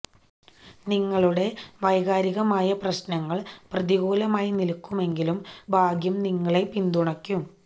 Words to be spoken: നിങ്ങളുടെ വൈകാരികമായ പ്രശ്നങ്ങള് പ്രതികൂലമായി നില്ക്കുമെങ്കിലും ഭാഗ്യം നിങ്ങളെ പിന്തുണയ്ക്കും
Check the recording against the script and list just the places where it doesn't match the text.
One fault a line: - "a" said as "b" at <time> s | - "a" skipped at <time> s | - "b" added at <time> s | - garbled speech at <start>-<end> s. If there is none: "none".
none